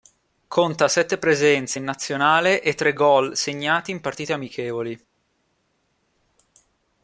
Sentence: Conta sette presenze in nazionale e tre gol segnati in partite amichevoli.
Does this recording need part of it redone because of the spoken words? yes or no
no